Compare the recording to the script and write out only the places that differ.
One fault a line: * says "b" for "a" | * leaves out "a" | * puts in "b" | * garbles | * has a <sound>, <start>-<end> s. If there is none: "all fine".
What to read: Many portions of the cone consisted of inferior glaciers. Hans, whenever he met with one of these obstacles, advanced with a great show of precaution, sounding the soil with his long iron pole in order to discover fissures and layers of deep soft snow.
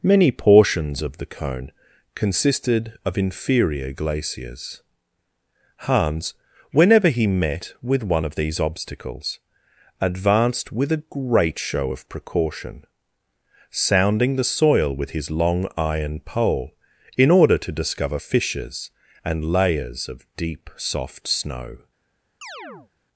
* has a chirp, 22.4-22.9 s